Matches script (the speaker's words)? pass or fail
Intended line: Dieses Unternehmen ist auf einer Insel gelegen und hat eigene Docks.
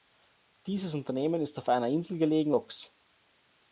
fail